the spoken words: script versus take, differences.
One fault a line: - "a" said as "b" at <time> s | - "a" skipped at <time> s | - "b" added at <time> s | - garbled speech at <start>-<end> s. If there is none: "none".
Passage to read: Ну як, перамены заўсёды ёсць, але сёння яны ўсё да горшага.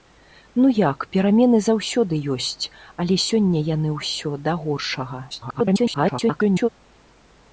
- garbled speech at 5.3-6.7 s